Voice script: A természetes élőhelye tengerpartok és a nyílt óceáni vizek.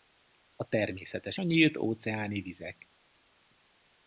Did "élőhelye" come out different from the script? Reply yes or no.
yes